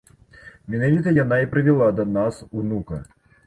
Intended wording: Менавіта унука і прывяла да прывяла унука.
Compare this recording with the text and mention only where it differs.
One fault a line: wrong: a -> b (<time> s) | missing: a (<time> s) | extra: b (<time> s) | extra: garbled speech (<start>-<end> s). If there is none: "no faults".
wrong: унука -> яна (1.2 s)
wrong: прывяла -> нас (2.1 s)